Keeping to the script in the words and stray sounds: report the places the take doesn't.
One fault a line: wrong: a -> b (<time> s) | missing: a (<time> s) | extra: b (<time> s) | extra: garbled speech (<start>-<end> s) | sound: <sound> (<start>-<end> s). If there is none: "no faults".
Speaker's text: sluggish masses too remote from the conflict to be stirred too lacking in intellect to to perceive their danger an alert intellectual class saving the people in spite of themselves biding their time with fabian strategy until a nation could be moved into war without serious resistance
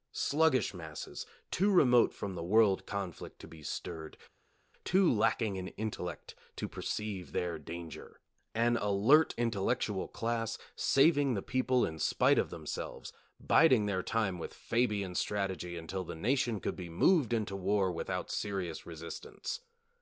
extra: world (2.4 s)
missing: to (6.7 s)
wrong: a -> the (16.0 s)